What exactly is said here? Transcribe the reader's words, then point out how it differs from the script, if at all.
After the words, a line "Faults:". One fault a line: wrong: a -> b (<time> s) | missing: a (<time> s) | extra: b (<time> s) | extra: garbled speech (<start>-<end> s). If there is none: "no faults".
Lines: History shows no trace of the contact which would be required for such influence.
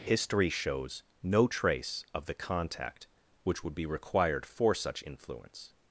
History shows no trace of the contact which would be required for such influence.
Faults:
no faults